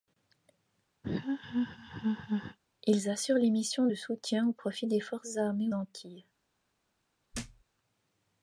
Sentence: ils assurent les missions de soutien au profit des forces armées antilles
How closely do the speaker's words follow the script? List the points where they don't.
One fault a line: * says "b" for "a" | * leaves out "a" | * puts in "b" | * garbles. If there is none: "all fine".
all fine